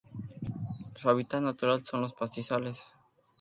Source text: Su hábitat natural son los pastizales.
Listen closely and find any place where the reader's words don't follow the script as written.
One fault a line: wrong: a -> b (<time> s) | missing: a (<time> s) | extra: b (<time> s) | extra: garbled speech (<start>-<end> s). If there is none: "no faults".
no faults